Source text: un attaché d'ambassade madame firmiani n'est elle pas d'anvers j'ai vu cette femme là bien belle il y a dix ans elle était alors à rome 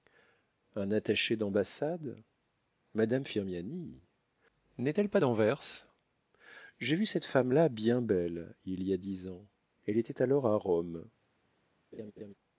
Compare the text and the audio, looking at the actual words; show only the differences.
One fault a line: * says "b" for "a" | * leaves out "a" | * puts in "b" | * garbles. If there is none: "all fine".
all fine